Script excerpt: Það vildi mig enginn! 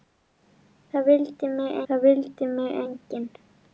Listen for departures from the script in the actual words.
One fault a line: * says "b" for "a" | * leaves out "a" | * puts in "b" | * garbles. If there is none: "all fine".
* puts in "það vildi mig"